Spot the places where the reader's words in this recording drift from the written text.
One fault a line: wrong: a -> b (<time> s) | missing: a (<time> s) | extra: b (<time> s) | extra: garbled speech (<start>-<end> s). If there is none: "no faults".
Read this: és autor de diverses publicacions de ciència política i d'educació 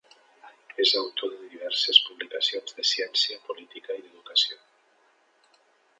no faults